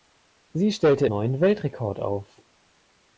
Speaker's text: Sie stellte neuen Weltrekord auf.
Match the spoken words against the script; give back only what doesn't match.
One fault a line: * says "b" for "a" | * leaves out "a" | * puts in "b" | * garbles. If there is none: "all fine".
all fine